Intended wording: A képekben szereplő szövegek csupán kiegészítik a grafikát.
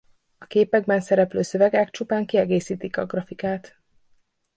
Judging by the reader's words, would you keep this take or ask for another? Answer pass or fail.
pass